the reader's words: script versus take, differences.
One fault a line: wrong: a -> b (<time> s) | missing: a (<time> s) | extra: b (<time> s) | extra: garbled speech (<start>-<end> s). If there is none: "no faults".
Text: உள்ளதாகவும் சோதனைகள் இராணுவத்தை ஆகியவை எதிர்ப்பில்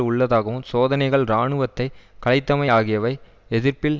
extra: கலைத்தமை (2.2 s)